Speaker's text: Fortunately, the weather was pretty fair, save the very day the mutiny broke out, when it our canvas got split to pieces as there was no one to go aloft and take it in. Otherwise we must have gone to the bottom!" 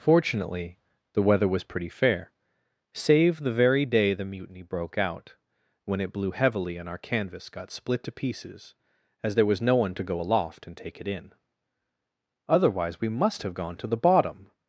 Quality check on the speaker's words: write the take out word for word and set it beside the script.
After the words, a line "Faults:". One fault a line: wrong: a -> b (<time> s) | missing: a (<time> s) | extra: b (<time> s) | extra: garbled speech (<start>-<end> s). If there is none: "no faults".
Fortunately, the weather was pretty fair, save the very day the mutiny broke out, when it blew heavily and our canvas got split to pieces as there was no one to go aloft and take it in. Otherwise we must have gone to the bottom!"
Faults:
extra: blew heavily and (6.1 s)